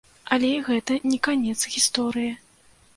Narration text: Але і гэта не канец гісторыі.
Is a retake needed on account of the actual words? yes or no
no